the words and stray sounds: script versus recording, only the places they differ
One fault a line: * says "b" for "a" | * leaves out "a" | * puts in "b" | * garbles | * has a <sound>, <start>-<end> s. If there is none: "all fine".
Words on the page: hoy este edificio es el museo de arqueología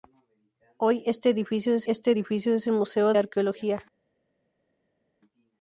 * puts in "este edificio es"
* leaves out "de"